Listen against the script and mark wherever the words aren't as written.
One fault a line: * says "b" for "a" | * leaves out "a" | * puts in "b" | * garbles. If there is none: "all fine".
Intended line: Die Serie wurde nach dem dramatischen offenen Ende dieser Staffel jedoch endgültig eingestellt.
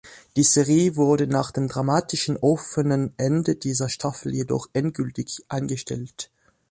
all fine